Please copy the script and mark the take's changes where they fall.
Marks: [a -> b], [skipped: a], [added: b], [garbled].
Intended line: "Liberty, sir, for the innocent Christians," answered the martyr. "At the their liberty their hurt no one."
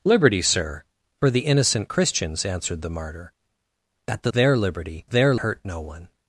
"Liberty, sir, for the innocent Christians," answered the martyr. "At the their liberty their hurt no one."